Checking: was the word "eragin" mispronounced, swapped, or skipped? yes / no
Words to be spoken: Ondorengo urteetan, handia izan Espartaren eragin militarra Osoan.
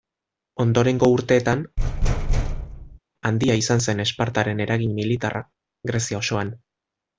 no